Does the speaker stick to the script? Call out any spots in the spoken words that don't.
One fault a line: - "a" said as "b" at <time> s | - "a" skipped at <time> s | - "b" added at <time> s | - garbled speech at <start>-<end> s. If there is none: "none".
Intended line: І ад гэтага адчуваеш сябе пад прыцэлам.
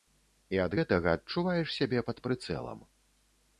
none